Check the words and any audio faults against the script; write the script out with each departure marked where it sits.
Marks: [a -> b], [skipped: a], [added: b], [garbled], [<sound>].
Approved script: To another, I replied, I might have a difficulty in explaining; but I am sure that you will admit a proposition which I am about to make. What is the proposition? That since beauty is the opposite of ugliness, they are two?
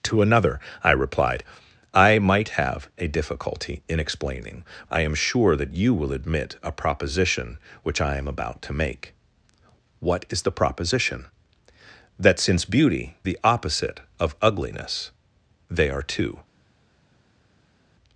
To another, I replied, I might have a difficulty in explaining; [skipped: but] I am sure that you will admit a proposition which I am about to make. What is the proposition? That since beauty [skipped: is] the opposite of ugliness, they are two?